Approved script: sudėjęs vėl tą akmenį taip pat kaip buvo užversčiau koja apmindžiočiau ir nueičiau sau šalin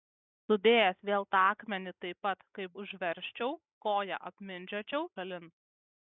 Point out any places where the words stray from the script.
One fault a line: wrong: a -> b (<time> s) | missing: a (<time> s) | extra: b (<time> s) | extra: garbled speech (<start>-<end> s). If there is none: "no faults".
missing: buvo (2.7 s)
missing: ir nueičiau sau (5.1 s)